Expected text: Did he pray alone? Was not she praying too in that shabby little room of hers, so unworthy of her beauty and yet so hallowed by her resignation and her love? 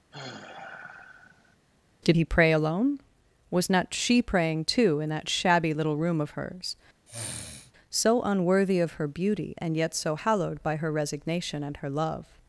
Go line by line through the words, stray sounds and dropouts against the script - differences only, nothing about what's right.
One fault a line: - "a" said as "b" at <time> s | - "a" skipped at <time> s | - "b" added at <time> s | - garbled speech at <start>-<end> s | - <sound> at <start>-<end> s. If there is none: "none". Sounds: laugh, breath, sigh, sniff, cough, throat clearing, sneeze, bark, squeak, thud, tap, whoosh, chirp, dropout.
- sigh at 0.1-1.6 s
- sniff at 7.1-7.7 s